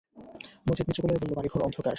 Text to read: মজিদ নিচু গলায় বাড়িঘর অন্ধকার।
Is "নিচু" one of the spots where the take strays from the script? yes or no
no